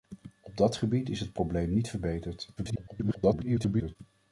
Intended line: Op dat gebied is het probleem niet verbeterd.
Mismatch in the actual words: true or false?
true